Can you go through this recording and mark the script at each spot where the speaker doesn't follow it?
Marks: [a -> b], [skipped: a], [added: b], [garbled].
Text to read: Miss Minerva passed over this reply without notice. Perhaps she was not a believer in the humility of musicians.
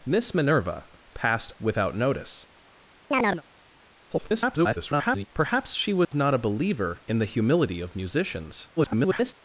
Miss Minerva passed [skipped: over this reply] without notice. [garbled] Perhaps she was not a believer in the humility of musicians. [garbled]